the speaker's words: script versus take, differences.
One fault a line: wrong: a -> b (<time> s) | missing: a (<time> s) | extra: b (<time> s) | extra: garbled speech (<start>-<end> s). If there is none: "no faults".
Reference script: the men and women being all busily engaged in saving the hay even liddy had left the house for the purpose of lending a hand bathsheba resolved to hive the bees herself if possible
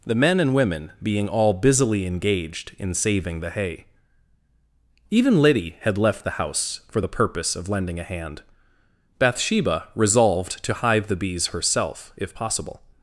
no faults